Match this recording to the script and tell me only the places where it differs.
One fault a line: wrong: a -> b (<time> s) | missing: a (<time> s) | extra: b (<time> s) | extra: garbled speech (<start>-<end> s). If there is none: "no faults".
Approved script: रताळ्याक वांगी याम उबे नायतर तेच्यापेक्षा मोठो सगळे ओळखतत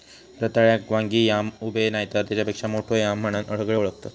extra: याम म्हणान (2.9 s)